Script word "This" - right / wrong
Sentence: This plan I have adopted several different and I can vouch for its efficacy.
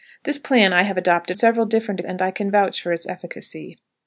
right